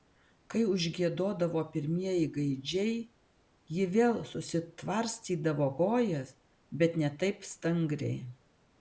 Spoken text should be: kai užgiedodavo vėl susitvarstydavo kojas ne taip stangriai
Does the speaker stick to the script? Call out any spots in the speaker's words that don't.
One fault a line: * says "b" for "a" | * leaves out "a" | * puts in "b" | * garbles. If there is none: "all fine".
* puts in "pirmieji gaidžiai ji"
* puts in "bet"